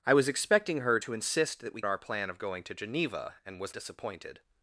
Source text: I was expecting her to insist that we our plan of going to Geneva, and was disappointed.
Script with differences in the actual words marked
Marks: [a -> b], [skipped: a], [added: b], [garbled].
I was expecting her to insist that we our plan of going to Geneva, and was disappointed.